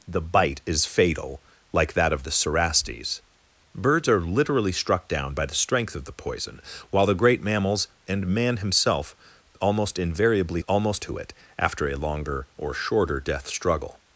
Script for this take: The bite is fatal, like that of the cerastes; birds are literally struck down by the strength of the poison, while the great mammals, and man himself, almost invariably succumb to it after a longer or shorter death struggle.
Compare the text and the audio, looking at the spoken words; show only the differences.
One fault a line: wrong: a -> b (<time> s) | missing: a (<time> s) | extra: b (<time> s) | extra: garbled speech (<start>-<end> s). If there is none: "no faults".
wrong: succumb -> almost (10.7 s)